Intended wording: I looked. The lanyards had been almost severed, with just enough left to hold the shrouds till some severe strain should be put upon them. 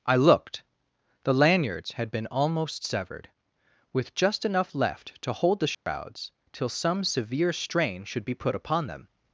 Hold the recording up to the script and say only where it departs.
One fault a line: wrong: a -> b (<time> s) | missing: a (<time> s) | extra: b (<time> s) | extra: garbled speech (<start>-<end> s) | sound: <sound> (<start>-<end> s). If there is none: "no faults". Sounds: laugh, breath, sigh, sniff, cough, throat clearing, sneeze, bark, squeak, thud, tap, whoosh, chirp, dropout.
sound: dropout (5.7-5.9 s)